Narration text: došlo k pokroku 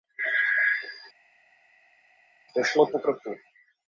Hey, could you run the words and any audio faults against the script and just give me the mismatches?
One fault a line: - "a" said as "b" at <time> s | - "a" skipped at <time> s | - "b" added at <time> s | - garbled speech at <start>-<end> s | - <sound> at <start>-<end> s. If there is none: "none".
none